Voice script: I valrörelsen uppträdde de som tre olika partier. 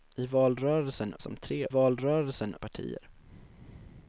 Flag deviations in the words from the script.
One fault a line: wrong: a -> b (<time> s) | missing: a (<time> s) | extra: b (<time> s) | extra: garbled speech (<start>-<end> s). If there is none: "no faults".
missing: uppträdde de (1.1 s)
wrong: olika -> valrörelsen (1.7 s)